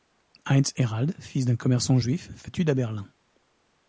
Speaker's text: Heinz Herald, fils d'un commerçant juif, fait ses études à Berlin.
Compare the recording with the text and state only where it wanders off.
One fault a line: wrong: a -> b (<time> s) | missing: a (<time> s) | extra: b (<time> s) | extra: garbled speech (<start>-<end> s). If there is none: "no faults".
missing: ses (2.5 s)